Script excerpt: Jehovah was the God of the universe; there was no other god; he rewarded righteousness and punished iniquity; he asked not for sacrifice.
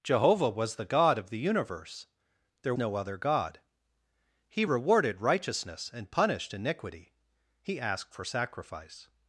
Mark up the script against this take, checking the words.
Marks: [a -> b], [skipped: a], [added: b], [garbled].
Jehovah was the God of the universe; there [skipped: was] no other god; he rewarded righteousness and punished iniquity; he asked [skipped: not] for sacrifice.